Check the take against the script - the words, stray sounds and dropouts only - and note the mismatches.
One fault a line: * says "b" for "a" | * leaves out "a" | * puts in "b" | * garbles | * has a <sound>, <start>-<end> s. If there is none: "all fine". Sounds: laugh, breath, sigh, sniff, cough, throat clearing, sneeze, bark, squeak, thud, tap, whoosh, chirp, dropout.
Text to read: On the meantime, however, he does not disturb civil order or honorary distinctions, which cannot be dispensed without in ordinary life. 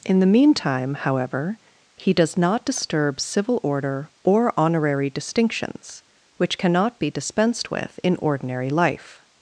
* says "In" for "On"
* says "with" for "without"